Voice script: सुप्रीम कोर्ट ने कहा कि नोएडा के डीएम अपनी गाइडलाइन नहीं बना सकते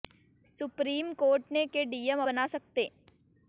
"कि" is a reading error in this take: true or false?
true